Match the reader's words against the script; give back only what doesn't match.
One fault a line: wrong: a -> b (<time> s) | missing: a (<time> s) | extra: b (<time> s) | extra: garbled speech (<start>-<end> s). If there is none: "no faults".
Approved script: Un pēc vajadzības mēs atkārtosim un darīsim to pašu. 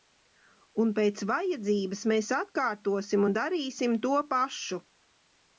no faults